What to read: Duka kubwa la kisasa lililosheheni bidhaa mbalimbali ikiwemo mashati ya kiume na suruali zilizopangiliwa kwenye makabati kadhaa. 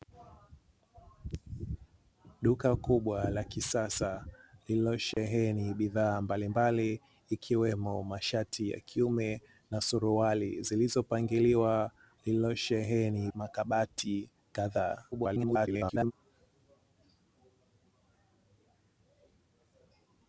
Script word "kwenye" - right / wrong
wrong